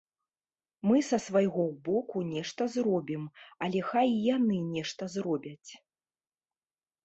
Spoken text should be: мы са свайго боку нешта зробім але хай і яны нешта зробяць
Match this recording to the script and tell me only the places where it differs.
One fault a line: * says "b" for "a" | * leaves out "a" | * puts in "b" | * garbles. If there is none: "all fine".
all fine